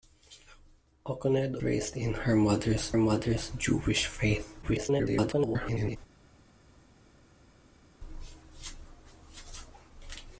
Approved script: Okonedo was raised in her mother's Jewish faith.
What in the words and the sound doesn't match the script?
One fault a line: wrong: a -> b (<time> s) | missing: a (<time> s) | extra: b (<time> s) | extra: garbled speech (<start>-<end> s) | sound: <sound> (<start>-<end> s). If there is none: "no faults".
missing: was (1.6 s)
extra: mother's (3.0 s)
extra: garbled speech (4.6-6.0 s)